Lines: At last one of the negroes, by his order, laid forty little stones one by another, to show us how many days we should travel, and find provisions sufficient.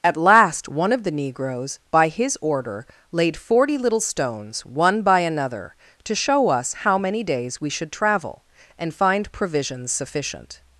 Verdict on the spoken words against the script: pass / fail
pass